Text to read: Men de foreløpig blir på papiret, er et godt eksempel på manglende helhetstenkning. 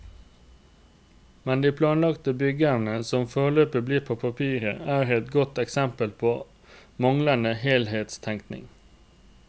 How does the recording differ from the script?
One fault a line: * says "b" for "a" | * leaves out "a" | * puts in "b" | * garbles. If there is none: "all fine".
* puts in "planlagte byggene som"